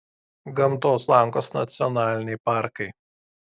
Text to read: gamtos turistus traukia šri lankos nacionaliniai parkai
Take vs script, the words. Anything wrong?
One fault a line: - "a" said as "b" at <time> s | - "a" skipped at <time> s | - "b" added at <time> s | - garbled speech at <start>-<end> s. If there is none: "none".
- "turistus traukia šri" skipped at 1.0 s